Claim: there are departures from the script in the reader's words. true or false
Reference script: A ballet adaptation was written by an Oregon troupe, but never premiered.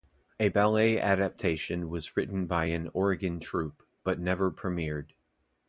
false